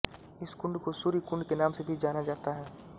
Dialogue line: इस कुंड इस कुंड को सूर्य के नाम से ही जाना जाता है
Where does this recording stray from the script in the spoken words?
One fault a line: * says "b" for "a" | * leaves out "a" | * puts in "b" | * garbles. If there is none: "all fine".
* leaves out "इस कुंड"
* puts in "कुंड"
* says "भी" for "ही"